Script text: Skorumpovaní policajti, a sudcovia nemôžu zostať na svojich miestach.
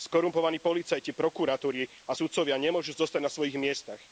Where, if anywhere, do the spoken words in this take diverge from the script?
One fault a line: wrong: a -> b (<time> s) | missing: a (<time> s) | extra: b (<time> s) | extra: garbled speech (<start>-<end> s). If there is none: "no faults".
extra: prokuratúry (1.1 s)